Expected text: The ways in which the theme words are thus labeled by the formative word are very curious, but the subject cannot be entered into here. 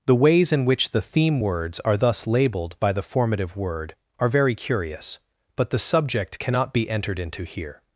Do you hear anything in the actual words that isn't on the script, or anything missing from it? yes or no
no